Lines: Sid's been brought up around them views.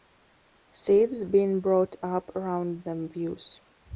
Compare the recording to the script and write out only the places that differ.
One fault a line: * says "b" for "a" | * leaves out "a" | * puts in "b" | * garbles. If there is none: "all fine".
all fine